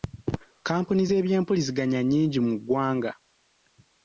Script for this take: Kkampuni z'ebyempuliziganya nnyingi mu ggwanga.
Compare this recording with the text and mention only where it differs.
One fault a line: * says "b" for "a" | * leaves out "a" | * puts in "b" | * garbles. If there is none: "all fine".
all fine